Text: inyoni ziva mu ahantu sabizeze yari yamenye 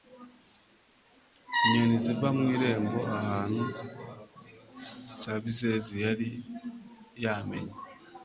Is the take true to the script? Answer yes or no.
no